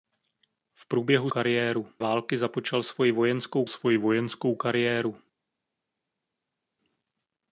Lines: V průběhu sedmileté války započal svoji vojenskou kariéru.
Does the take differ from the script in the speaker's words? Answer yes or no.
yes